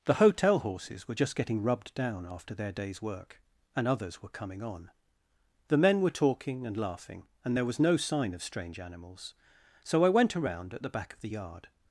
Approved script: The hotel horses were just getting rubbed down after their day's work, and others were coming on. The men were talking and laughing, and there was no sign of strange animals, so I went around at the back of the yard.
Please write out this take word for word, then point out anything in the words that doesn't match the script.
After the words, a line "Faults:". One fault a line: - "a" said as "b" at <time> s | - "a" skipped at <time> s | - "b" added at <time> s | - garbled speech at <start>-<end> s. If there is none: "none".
The hotel horses were just getting rubbed down after their day's work, and others were coming on. The men were talking and laughing, and there was no sign of strange animals, so I went around at the back of the yard.
Faults:
none